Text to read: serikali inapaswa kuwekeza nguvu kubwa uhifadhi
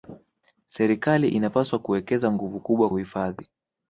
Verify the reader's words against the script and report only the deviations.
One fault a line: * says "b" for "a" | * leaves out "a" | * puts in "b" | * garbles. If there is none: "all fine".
all fine